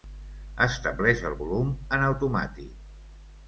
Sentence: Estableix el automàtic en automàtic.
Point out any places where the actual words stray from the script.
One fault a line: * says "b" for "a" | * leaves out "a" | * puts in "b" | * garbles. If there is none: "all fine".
* says "volum" for "automàtic"